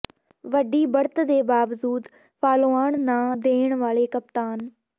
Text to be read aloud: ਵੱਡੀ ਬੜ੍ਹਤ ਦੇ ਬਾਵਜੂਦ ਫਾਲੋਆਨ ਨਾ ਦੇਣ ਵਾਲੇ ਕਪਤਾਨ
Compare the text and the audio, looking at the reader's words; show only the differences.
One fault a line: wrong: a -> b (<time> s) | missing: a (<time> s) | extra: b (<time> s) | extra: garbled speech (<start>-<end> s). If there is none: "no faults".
no faults